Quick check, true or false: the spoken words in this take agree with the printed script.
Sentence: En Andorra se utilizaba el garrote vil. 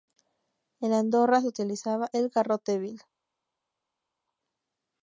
true